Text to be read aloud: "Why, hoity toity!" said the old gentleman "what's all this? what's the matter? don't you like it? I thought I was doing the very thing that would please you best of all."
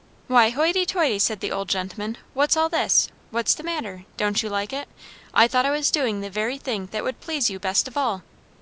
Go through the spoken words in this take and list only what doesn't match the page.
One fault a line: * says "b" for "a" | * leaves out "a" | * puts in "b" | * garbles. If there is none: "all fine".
all fine